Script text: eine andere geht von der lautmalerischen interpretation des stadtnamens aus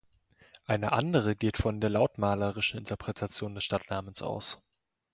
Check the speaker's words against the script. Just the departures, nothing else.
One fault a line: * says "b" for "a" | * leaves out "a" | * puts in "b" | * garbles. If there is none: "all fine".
all fine